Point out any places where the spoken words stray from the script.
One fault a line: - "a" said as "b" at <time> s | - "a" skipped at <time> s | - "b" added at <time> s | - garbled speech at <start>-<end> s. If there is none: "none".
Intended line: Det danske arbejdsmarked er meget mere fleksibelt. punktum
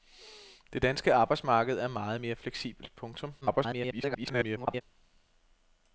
- garbled speech at 3.4-4.8 s